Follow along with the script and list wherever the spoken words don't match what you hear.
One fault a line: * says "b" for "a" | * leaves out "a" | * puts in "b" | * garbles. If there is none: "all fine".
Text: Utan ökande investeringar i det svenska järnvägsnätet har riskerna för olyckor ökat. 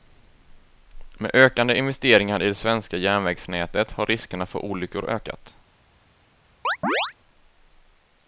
* says "Med" for "Utan"